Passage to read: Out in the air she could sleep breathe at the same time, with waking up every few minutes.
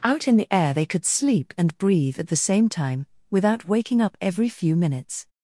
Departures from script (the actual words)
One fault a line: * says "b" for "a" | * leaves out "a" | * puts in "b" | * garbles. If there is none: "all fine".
* says "they" for "she"
* puts in "and"
* says "without" for "with"